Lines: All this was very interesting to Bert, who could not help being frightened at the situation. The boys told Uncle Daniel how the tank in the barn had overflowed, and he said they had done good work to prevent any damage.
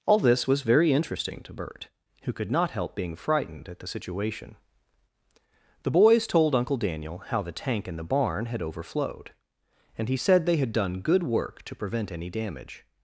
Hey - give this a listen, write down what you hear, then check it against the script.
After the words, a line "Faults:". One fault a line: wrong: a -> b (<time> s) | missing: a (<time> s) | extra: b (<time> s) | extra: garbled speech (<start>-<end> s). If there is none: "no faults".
All this was very interesting to Bert, who could not help being frightened at the situation. The boys told Uncle Daniel how the tank in the barn had overflowed, and he said they had done good work to prevent any damage.
Faults:
no faults